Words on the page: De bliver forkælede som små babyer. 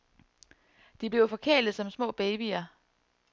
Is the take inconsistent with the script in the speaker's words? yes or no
no